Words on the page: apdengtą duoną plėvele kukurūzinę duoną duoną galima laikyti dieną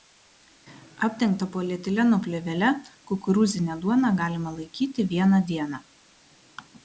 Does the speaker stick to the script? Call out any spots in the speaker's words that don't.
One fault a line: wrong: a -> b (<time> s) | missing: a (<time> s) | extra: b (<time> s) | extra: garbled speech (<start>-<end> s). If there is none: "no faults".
wrong: duoną -> polietileno (1.6 s)
missing: duoną (4.1 s)
extra: vieną (5.2 s)